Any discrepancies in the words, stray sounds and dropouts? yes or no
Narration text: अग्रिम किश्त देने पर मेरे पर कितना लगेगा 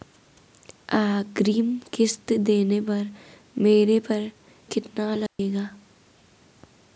yes